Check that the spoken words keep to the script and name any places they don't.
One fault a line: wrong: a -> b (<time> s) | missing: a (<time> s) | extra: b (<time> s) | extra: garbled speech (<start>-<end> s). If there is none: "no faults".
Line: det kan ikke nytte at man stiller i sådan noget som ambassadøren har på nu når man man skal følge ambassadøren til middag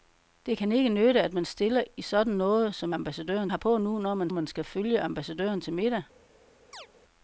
no faults